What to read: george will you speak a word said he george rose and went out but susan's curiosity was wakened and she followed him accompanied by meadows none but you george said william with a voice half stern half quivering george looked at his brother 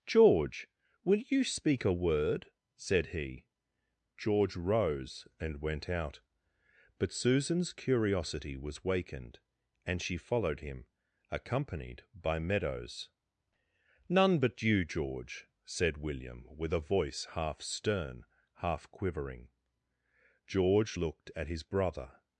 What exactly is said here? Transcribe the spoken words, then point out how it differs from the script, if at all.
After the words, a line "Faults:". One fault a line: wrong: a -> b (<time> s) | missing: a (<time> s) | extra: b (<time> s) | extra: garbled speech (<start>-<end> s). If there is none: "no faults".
george will you speak a word said he george rose and went out but susan's curiosity was wakened and she followed him accompanied by meadows none but you george said william with a voice half stern half quivering george looked at his brother
Faults:
no faults